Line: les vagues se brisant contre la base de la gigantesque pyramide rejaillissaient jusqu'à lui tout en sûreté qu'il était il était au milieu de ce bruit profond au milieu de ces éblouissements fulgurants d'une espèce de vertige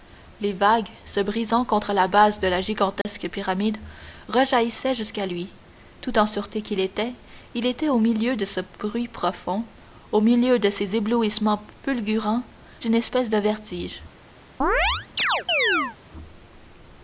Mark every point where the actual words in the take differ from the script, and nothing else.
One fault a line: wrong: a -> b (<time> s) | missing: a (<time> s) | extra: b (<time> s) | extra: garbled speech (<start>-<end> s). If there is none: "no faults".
no faults